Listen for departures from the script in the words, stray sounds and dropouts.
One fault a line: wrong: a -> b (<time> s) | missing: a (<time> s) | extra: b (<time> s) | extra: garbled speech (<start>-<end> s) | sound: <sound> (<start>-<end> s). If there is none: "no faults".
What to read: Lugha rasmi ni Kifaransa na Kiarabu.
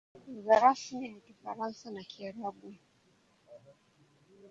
no faults